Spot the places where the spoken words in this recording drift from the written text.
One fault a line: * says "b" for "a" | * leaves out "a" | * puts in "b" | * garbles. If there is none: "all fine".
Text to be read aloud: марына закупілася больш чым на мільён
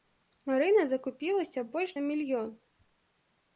* leaves out "чым"